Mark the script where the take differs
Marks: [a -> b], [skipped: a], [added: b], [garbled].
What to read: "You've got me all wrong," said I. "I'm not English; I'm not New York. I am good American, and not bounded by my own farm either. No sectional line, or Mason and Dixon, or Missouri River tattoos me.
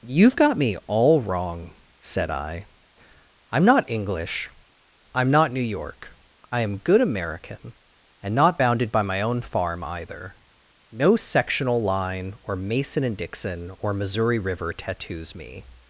"You've got me all wrong," said I. "I'm not English; I'm not New York. I am good American, and not bounded by my own farm either. No sectional line, or Mason and Dixon, or Missouri River tattoos me.